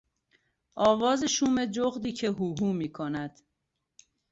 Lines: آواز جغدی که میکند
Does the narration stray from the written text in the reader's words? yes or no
yes